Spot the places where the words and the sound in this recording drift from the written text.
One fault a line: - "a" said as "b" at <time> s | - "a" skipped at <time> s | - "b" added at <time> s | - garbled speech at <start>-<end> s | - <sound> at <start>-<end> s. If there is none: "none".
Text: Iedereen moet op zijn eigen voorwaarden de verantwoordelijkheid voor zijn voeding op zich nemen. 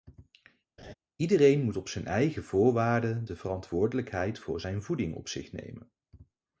- laugh at 0.8-0.9 s